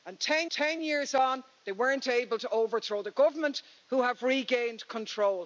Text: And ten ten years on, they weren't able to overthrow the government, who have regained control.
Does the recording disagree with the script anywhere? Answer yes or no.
no